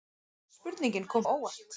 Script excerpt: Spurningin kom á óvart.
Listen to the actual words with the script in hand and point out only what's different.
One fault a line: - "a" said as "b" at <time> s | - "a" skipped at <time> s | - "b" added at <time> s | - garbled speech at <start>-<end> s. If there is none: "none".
none